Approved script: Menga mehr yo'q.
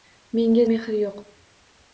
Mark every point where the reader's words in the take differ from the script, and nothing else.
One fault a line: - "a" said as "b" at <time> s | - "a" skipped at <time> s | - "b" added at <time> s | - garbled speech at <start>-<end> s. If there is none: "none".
none